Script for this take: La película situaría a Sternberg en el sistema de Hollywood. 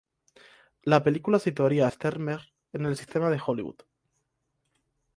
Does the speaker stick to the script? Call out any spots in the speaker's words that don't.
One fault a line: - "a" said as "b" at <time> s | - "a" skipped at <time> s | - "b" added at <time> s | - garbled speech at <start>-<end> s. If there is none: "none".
none